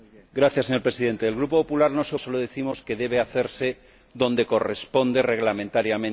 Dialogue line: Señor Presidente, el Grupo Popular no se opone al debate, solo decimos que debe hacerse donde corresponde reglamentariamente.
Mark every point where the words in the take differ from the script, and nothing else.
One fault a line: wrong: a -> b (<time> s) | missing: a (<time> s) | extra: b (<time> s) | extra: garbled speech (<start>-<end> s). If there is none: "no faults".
missing: opone al debate (2.1 s)